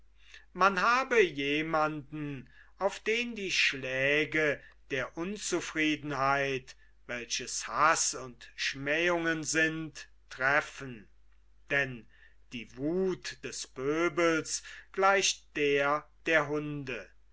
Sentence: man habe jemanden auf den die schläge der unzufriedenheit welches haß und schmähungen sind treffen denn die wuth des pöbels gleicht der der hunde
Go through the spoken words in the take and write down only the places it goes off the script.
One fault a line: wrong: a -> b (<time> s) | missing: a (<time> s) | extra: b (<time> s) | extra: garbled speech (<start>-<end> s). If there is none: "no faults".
no faults